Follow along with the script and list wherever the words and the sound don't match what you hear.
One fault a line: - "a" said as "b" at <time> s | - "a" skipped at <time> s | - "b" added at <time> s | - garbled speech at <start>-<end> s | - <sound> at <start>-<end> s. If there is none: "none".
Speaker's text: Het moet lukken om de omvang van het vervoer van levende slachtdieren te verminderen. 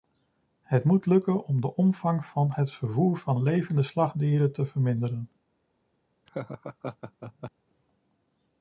- laugh at 6.3-7.5 s